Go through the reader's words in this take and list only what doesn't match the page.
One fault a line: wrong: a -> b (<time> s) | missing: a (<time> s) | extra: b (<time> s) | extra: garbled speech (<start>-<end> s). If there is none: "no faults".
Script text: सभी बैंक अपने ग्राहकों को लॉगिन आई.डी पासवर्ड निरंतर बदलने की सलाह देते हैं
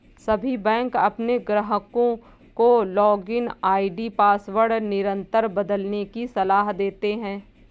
no faults